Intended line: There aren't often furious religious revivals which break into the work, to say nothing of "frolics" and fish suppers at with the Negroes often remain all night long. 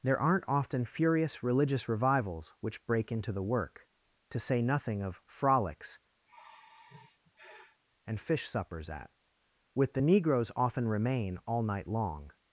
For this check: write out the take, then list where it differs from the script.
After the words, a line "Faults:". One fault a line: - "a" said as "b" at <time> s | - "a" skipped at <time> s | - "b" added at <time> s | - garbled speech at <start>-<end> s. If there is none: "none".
There aren't often furious religious revivals which break into the work, to say nothing of "frolics" and fish suppers at with the Negroes often remain all night long.
Faults:
none